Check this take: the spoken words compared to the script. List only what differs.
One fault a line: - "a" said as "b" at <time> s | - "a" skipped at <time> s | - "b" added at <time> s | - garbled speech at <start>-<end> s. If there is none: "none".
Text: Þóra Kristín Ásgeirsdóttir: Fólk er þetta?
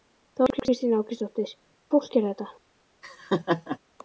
none